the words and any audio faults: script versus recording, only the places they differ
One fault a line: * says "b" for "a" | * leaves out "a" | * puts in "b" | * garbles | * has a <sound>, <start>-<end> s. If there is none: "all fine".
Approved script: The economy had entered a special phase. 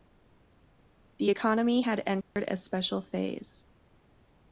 * has a dropout, 2.2-2.4 s